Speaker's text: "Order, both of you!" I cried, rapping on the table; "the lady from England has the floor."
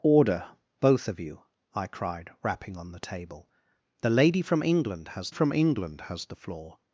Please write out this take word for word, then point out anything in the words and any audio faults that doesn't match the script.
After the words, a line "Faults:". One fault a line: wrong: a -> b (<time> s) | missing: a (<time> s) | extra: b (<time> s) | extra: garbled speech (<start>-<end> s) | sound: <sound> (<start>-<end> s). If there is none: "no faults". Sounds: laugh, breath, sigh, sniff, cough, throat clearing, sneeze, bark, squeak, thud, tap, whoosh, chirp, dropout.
"Order, both of you!" I cried, rapping on the table; "the lady from England has from England has the floor."
Faults:
extra: from England has (5.3 s)